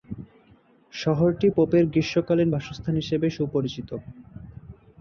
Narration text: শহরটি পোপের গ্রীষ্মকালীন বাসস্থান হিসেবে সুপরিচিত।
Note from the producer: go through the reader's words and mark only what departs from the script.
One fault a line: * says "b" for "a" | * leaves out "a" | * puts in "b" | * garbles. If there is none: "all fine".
all fine